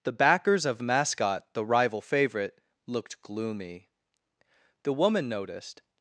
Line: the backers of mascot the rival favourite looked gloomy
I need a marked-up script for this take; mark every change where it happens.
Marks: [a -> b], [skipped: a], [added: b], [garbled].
the backers of mascot the rival favourite looked gloomy [added: the woman noticed]